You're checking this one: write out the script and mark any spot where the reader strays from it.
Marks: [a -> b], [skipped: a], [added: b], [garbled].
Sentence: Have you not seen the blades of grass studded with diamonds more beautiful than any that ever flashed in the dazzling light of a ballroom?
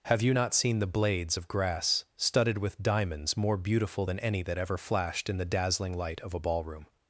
Have you not seen the blades of grass studded with diamonds more beautiful than any that ever flashed in the dazzling light of a ballroom?